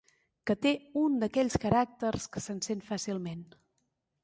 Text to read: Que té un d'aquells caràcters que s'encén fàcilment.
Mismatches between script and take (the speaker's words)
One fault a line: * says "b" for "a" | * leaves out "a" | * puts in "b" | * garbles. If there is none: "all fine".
all fine